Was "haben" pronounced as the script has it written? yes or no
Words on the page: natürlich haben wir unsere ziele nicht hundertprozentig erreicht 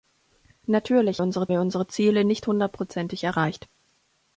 no